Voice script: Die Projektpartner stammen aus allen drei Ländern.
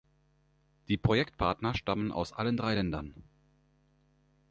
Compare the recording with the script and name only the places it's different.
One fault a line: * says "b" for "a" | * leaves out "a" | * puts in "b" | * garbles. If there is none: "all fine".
all fine